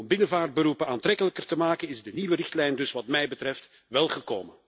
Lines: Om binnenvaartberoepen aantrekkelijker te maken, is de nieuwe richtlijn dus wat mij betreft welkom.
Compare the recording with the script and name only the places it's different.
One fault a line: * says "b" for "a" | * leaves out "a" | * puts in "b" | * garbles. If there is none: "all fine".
all fine